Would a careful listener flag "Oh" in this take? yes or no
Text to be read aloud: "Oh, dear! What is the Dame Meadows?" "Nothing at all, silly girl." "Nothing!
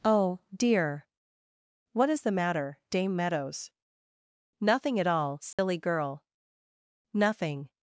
no